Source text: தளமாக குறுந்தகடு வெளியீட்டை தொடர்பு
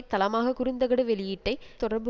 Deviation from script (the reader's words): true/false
false